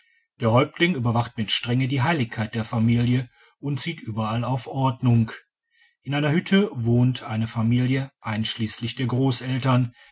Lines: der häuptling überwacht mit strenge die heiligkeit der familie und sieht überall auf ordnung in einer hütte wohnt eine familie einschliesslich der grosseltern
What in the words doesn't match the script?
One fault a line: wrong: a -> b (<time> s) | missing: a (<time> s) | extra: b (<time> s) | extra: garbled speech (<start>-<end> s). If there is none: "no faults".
no faults